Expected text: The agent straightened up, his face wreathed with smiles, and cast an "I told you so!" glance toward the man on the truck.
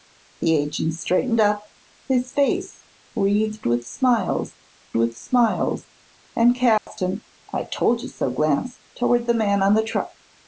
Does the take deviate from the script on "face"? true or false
false